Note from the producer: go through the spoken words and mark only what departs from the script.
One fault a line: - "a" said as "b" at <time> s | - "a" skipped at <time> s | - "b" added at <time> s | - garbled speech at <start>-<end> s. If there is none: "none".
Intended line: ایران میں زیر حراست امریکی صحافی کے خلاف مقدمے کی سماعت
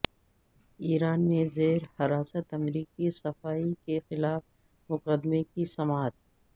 none